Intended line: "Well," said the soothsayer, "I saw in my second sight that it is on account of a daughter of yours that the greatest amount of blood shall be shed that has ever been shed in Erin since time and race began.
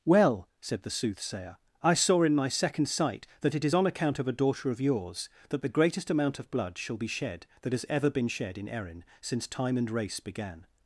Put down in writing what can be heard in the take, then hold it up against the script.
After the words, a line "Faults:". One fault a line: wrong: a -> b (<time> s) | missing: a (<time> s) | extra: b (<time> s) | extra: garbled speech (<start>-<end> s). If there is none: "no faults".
"Well," said the soothsayer, "I saw in my second sight that it is on account of a daughter of yours that the greatest amount of blood shall be shed that has ever been shed in Erin since time and race began.
Faults:
no faults